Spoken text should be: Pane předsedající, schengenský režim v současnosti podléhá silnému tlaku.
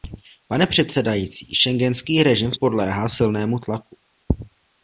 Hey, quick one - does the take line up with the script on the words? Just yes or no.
no